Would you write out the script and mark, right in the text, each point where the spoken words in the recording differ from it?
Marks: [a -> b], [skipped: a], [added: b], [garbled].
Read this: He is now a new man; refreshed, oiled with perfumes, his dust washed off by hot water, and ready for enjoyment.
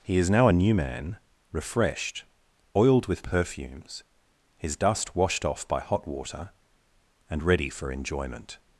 He is now a new man; refreshed, oiled with perfumes, his dust washed off by hot water, and ready for enjoyment.